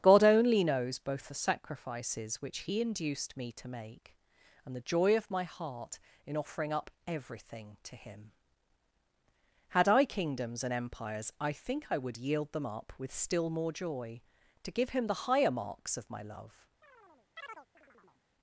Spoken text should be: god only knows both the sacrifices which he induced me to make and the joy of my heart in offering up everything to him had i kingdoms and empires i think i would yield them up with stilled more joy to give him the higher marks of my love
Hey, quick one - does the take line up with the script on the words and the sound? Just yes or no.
no